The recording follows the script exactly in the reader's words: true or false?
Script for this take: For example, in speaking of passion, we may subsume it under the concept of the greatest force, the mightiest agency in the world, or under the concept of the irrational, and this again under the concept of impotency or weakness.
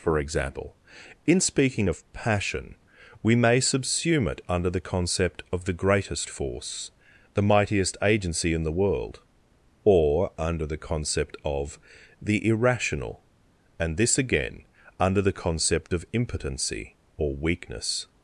true